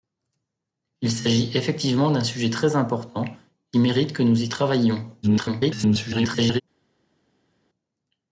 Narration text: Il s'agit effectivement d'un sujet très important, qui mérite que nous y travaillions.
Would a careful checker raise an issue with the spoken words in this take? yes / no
yes